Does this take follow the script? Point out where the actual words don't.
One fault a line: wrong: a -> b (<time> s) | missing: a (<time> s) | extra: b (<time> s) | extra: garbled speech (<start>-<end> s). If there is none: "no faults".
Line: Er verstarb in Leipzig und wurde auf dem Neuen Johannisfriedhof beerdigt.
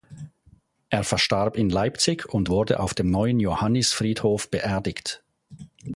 no faults